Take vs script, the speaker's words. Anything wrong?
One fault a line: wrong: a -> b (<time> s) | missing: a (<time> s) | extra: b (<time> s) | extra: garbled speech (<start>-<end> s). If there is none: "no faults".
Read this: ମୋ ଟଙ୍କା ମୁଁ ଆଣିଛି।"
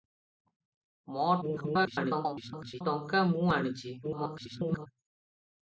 extra: garbled speech (1.4-2.8 s)
extra: garbled speech (4.0-4.9 s)